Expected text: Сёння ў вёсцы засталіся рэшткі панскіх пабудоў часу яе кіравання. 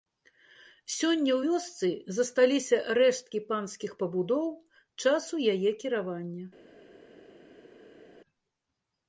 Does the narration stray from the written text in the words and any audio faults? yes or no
no